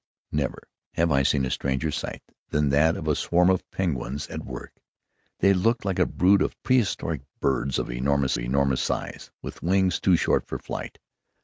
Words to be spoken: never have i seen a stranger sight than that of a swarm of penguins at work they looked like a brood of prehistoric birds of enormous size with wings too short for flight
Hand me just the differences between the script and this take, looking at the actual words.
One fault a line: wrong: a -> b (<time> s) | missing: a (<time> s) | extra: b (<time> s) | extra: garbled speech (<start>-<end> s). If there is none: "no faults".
extra: enormous (8.4 s)